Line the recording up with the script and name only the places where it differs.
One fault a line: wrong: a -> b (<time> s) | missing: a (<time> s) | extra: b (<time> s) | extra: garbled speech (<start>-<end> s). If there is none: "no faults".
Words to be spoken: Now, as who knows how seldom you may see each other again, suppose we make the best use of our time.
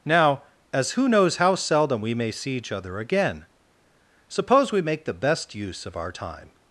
wrong: you -> we (2.0 s)